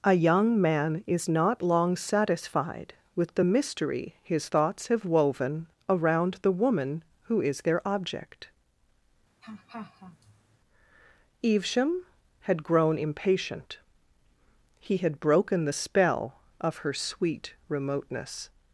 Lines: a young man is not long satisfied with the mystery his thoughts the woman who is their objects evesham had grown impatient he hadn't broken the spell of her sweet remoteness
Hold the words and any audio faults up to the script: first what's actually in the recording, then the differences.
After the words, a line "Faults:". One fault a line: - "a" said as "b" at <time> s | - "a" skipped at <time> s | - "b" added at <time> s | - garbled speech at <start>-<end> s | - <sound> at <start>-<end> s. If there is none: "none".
a young man is not long satisfied with the mystery his thoughts have woven around the woman who is their object evesham had grown impatient he had broken the spell of her sweet remoteness
Faults:
- "have woven around" added at 4.9 s
- "objects" said as "object" at 7.9 s
- laugh at 9.4-10.6 s
- "hadn't" said as "had" at 15.0 s